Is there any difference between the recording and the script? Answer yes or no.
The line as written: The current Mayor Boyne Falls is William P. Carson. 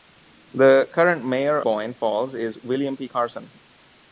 no